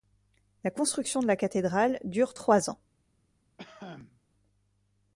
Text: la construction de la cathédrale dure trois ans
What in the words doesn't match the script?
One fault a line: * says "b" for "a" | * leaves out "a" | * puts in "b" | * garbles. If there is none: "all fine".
all fine